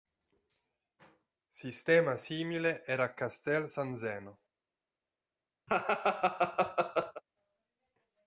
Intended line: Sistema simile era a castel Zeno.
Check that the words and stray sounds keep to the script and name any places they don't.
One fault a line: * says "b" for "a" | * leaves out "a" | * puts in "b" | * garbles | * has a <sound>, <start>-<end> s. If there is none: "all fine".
* puts in "San"
* has a laugh, 5.7-7.2 s